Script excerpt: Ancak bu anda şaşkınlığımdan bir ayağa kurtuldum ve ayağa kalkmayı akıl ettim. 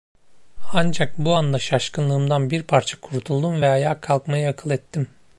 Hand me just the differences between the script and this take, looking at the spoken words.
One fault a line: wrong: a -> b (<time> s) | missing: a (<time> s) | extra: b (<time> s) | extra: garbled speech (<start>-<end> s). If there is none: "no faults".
wrong: ayağa -> parça (2.6 s)